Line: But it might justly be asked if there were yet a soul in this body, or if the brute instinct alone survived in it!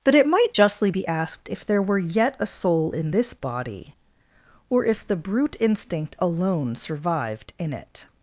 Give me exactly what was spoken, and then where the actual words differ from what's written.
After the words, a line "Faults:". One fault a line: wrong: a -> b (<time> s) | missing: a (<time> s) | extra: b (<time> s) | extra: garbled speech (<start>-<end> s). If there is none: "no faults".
But it might justly be asked if there were yet a soul in this body, or if the brute instinct alone survived in it!
Faults:
no faults